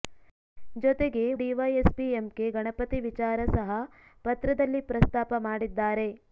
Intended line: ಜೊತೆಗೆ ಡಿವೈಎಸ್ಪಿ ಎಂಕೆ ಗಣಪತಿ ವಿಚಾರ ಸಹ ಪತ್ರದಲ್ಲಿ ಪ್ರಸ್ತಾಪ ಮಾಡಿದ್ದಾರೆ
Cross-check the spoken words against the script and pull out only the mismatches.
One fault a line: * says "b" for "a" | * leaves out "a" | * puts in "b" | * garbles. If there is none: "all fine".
all fine